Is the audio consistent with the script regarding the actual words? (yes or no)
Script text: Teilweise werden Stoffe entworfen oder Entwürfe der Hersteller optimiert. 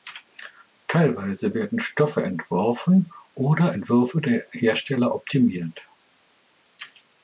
yes